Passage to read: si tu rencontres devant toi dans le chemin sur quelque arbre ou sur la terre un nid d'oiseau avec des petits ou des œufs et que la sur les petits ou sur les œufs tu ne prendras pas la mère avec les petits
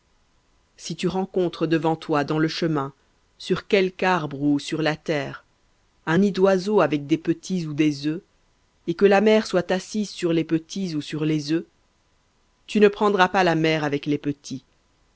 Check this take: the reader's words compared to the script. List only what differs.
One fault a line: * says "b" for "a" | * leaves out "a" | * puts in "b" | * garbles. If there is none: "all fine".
* puts in "mère soit assise"